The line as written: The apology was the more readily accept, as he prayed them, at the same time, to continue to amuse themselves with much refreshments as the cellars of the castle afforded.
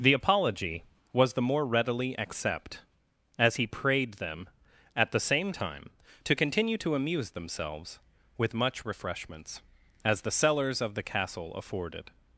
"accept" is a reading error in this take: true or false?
false